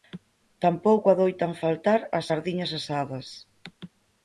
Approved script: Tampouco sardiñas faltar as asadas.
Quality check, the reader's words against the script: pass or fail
fail